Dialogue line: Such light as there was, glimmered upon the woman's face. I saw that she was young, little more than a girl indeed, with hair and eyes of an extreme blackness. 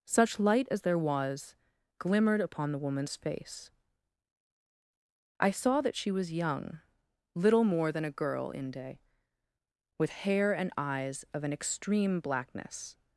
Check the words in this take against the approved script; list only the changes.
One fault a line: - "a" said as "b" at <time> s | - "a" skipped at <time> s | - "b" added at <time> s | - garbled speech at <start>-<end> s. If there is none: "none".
- "indeed" said as "inde" at 8.5 s